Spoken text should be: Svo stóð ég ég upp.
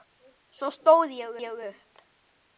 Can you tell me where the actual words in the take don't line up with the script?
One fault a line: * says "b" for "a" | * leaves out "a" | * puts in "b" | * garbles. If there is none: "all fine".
all fine